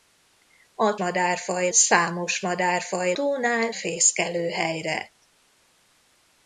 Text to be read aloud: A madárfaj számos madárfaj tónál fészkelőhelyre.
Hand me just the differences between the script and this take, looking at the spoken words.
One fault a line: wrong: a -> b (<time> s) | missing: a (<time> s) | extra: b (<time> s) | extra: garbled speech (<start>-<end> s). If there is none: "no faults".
no faults